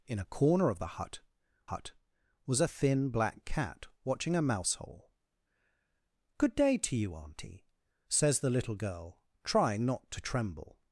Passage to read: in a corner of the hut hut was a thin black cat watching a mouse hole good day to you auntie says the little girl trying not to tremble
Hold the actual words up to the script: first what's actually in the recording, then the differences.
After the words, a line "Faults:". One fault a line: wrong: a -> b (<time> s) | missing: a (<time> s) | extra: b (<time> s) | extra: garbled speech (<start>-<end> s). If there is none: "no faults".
in a corner of the hut hut was a thin black cat watching a mouse hole good day to you auntie says the little girl trying not to tremble
Faults:
no faults